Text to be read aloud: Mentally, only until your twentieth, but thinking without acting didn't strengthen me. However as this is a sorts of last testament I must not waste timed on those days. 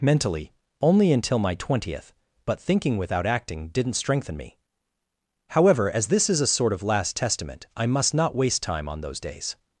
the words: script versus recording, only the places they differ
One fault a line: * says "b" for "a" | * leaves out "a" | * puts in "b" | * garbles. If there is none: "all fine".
* says "my" for "your"
* says "sort" for "sorts"
* says "time" for "timed"